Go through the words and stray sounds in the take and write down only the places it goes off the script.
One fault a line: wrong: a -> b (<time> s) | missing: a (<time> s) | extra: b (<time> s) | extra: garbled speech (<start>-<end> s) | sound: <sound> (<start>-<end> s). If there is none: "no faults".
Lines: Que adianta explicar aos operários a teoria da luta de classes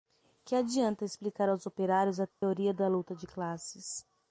sound: dropout (2.3-2.4 s)